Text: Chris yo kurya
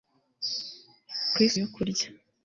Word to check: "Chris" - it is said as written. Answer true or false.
true